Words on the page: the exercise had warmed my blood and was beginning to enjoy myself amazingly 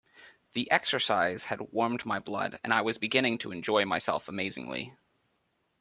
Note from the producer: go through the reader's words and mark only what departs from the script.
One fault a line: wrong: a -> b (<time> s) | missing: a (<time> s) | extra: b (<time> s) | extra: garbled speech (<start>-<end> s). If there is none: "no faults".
extra: i (2.7 s)